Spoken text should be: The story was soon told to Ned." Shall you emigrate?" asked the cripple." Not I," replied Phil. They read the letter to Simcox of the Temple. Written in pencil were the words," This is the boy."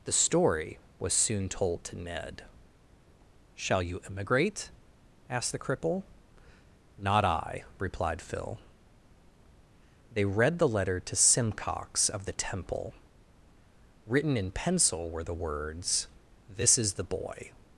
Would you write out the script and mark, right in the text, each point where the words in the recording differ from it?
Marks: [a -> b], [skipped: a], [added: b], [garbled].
The story was soon told to Ned." Shall you emigrate?" asked the cripple." Not I," replied Phil. They read the letter to Simcox of the Temple. Written in pencil were the words," This is the boy."